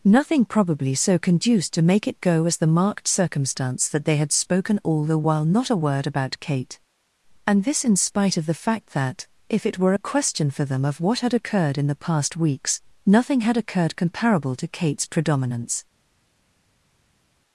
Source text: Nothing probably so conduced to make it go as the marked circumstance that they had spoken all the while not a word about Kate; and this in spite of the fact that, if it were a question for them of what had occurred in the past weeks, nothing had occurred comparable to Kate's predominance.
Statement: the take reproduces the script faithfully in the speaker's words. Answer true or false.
true